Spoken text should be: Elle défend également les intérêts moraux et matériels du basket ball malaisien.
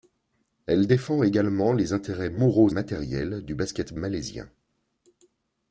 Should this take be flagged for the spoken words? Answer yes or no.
yes